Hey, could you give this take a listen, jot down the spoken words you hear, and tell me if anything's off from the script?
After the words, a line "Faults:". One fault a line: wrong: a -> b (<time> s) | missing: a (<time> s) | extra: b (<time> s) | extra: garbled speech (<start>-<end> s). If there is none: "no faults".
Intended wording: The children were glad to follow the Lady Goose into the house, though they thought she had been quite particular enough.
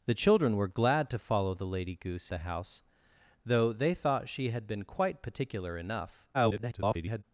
The children were glad to follow the Lady Goose the house, though they thought she had been quite particular enough. [garbled]
Faults:
missing: into (2.3 s)
extra: garbled speech (6.3-7.2 s)